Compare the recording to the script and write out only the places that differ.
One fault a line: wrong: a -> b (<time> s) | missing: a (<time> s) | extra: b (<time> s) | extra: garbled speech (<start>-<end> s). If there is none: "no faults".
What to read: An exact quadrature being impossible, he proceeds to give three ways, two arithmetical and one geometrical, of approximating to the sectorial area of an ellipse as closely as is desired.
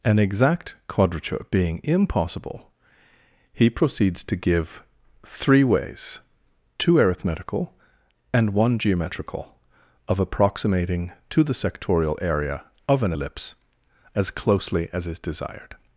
no faults